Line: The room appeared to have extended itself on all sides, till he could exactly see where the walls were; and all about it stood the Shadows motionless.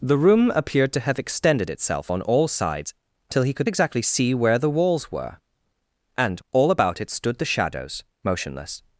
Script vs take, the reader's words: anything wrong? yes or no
no